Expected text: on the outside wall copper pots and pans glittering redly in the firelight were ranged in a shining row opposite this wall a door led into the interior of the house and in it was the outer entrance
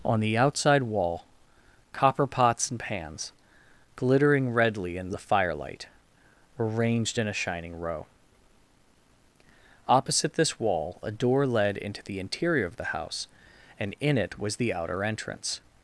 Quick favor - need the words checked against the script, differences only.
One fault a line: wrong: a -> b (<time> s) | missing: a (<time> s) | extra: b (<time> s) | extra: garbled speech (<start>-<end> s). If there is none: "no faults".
no faults